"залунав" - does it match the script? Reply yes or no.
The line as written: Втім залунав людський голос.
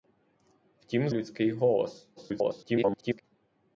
no